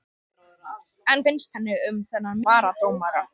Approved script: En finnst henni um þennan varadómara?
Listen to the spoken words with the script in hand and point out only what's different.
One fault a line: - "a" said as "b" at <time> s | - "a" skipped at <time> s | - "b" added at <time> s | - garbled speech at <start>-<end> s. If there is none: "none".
none